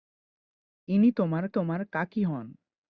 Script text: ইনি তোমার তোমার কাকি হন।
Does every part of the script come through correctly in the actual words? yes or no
yes